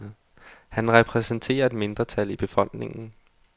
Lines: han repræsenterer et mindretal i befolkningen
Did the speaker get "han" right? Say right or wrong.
right